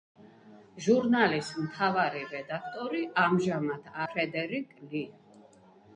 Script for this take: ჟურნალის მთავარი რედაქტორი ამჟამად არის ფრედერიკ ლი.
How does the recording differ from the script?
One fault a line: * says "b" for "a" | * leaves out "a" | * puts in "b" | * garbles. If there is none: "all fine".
* leaves out "არის"